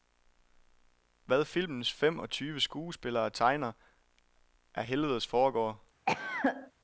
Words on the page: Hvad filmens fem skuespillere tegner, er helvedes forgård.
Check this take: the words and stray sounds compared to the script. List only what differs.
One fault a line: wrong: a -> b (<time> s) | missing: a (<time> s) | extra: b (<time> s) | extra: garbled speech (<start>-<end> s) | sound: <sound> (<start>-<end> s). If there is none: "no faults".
extra: og tyve (2.2 s)
sound: cough (6.1-6.7 s)